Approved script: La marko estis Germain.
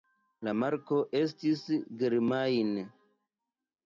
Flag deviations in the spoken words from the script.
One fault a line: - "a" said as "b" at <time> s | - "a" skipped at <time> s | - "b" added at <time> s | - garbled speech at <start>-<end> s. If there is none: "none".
none